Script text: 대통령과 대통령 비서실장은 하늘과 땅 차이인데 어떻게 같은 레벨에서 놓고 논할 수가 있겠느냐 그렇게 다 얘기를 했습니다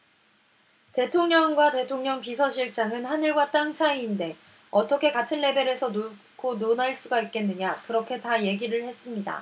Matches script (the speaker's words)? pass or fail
pass